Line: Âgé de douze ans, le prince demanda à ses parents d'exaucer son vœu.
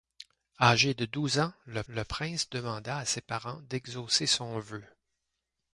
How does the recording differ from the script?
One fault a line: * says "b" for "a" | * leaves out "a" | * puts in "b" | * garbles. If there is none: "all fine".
* puts in "le"